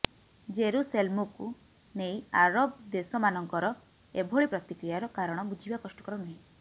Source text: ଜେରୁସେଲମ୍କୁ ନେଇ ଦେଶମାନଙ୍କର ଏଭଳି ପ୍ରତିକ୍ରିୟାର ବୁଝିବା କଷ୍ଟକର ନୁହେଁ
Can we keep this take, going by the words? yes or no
no